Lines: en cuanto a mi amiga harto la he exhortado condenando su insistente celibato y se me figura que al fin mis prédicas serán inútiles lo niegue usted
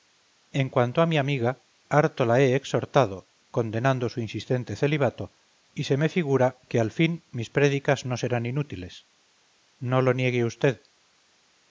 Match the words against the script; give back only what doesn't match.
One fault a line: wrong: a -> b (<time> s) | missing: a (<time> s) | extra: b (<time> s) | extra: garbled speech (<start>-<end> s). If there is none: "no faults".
extra: no (8.1 s)
extra: no (9.8 s)